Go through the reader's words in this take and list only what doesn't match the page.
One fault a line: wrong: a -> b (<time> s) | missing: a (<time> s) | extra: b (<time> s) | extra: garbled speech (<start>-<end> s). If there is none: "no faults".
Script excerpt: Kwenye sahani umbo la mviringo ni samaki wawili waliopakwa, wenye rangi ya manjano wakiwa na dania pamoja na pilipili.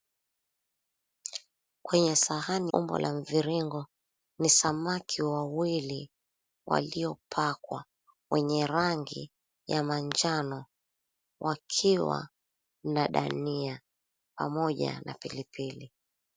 no faults